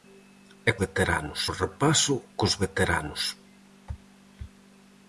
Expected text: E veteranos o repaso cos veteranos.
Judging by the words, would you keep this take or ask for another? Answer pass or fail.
pass